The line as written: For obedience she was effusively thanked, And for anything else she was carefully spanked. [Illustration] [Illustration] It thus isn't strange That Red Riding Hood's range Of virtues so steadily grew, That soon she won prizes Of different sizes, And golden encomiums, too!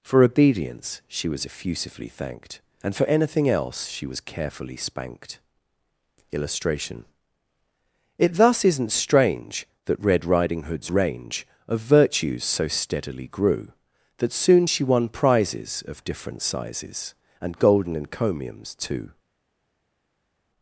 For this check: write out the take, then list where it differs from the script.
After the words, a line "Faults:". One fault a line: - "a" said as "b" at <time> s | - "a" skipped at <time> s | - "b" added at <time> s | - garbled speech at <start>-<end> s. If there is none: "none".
For obedience she was effusively thanked, And for anything else she was carefully spanked. [Illustration] It thus isn't strange That Red Riding Hood's range Of virtues so steadily grew, That soon she won prizes Of different sizes, And golden encomiums, too!
Faults:
- "Illustration" skipped at 7.0 s